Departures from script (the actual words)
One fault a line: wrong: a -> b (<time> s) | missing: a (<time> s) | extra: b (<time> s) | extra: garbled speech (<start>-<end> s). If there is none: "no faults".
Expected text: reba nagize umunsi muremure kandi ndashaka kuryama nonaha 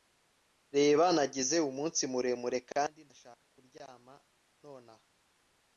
no faults